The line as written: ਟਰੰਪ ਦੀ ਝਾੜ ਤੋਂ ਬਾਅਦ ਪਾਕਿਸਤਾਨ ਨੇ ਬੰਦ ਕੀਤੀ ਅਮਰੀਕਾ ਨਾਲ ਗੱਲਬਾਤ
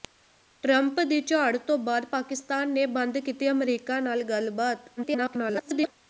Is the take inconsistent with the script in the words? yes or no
yes